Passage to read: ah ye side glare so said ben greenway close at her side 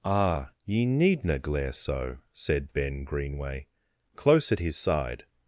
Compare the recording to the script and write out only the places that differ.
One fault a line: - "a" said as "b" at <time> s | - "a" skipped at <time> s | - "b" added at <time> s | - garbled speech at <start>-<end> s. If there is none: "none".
- "side" said as "needna" at 0.8 s
- "her" said as "his" at 4.6 s